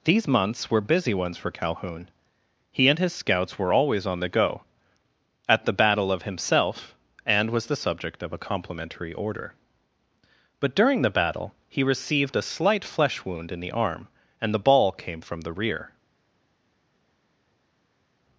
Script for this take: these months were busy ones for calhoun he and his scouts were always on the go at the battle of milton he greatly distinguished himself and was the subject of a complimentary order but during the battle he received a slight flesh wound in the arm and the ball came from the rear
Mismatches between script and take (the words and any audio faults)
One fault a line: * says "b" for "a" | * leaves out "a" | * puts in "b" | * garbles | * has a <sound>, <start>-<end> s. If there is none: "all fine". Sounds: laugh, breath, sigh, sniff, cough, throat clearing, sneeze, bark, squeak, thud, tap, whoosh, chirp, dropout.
* leaves out "milton he greatly distinguished"